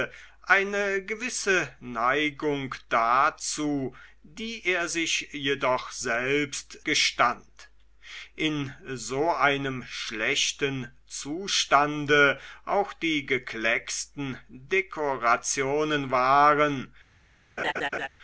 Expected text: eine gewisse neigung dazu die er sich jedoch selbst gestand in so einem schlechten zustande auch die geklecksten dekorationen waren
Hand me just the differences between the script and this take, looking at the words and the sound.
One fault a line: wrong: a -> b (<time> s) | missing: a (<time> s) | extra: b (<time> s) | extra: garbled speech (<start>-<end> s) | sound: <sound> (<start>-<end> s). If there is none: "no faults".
sound: laugh (17.6-18.1 s)